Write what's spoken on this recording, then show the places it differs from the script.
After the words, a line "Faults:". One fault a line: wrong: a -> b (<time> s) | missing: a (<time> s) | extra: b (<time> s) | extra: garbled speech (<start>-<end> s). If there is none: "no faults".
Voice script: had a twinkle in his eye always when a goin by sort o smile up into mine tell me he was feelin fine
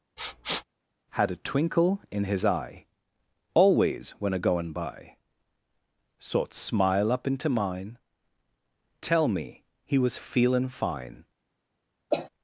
had a twinkle in his eye always when a goin by sort smile up into mine tell me he was feelin fine
Faults:
missing: o (6.5 s)